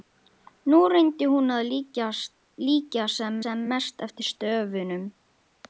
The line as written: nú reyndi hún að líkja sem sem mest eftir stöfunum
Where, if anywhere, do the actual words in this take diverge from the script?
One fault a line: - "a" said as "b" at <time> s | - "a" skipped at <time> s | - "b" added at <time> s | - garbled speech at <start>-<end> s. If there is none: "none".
none